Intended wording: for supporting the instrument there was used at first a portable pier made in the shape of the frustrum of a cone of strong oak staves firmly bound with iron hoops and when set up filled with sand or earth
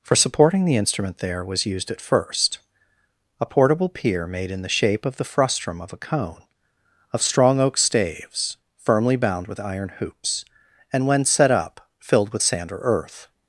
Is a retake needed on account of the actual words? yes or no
no